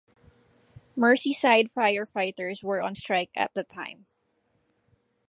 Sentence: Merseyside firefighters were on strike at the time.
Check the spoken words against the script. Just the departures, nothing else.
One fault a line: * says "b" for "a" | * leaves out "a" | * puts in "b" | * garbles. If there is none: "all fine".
all fine